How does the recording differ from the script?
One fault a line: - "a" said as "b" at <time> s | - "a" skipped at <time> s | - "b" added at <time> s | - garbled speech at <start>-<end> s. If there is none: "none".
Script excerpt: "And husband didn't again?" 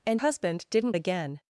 none